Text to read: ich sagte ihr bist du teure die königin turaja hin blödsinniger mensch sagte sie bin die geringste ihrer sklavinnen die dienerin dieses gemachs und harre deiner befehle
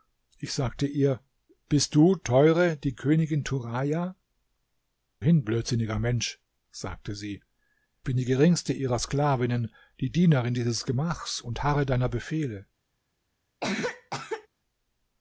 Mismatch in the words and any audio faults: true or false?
true